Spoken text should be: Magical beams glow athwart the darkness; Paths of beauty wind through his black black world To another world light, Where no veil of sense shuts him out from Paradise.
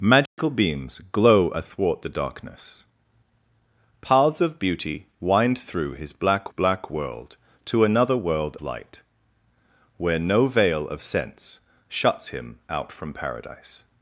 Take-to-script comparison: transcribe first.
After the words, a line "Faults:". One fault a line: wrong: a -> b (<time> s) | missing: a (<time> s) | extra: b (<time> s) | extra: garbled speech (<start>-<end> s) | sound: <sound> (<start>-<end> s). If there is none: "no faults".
Magical beams glow athwart the darkness; Paths of beauty wind through his black black world To another world light, Where no veil of sense shuts him out from Paradise.
Faults:
sound: dropout (0.3-0.4 s)